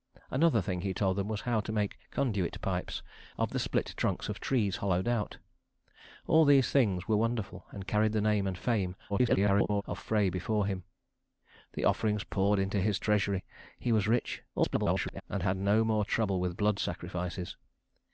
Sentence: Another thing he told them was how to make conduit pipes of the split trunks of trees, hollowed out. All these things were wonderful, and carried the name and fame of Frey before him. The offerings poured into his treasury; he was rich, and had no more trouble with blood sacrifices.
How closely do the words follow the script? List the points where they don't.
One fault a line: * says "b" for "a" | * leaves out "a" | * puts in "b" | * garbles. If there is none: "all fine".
* garbles
* garbles